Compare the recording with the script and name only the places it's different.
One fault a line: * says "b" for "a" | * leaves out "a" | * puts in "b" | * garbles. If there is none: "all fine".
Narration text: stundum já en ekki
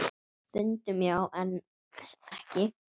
all fine